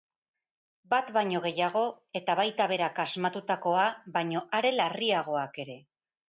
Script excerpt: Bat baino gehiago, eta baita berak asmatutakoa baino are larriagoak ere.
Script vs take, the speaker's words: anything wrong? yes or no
no